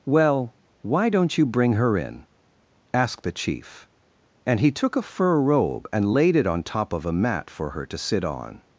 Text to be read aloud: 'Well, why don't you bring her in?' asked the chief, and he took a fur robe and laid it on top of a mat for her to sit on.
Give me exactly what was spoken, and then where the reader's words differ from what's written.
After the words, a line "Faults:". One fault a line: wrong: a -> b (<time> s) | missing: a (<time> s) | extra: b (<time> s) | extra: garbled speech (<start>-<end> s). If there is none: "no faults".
'Well, why don't you bring her in?' asked the chief, and he took a fur robe and laid it on top of a mat for her to sit on.
Faults:
no faults